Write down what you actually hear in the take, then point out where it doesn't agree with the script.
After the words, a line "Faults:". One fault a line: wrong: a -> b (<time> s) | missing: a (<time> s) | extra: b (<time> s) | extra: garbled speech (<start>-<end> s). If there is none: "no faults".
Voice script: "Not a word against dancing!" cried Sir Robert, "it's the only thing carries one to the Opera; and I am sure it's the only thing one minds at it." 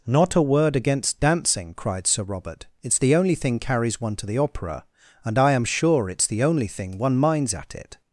"Not a word against dancing!" cried Sir Robert, "it's the only thing carries one to the Opera; and I am sure it's the only thing one minds at it."
Faults:
no faults